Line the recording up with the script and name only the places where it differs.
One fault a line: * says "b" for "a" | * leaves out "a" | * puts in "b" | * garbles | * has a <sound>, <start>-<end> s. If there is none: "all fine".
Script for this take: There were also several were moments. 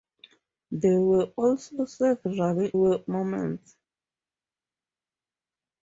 all fine